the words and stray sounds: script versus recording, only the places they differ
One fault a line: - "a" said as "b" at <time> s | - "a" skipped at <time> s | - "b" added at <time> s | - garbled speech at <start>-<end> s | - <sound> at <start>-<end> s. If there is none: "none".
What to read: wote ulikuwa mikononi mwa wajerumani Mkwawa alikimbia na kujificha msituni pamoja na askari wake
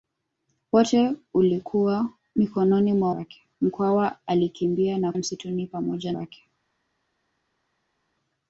- "wajerumani" said as "wake" at 3.1 s
- "kujificha" skipped at 5.1 s
- "na askari" skipped at 6.1 s